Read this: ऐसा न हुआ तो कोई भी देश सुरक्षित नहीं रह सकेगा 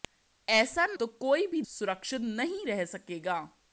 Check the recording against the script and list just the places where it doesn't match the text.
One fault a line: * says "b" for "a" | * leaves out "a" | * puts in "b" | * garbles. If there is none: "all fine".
* leaves out "हुआ"
* leaves out "देश"